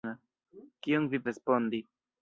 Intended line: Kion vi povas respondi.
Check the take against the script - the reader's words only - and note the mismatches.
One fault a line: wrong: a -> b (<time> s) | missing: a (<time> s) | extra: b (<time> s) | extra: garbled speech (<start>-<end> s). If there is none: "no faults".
missing: povas (1.2 s)